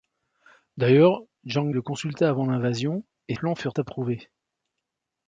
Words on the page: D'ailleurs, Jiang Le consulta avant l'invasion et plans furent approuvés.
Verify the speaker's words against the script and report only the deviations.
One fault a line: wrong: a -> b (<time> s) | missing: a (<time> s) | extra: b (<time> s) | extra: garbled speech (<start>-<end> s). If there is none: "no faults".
no faults